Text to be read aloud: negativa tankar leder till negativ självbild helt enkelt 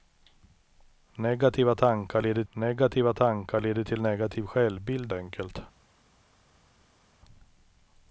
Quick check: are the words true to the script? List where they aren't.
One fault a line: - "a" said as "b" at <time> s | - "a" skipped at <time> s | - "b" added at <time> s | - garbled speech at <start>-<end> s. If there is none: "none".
- "negativa tankar leder" added at 2.5 s
- "helt" skipped at 5.1 s